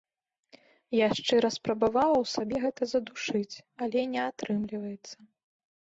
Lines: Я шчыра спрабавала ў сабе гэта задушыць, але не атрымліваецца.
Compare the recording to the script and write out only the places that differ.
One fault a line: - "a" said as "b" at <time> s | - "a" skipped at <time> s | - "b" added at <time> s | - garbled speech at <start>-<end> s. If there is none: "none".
none